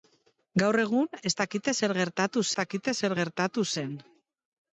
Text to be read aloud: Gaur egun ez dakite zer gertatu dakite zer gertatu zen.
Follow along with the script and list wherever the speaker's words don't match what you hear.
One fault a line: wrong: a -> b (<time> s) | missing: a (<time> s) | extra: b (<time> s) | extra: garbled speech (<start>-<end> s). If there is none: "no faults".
no faults